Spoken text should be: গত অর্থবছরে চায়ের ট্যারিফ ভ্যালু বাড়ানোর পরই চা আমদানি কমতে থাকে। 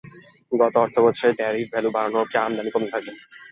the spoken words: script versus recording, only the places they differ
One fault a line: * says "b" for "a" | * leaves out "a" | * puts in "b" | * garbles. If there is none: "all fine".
* leaves out "চায়ের"
* leaves out "পরই"